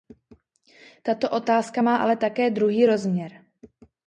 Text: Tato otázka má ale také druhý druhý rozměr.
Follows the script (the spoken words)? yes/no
no